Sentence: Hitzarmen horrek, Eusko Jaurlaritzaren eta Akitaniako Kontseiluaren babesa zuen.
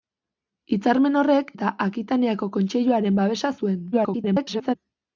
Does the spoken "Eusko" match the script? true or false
false